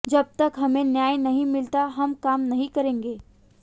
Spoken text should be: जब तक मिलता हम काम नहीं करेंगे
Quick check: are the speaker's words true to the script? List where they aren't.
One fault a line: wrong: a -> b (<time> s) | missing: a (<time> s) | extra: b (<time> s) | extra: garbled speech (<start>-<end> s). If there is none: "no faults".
extra: हमें न्याय नहीं (0.6 s)